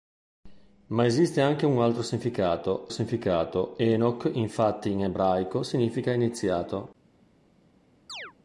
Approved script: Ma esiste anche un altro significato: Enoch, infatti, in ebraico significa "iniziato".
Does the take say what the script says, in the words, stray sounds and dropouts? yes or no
no